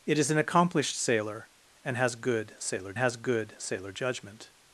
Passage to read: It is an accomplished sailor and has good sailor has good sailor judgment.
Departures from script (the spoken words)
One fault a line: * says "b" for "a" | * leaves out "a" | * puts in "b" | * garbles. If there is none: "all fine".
all fine